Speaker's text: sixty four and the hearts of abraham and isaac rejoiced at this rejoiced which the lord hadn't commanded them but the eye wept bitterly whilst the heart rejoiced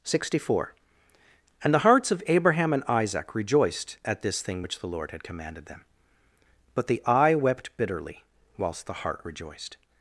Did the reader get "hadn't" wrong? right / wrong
wrong